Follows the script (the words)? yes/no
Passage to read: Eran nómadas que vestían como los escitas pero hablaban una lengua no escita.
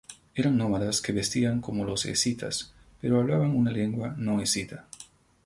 yes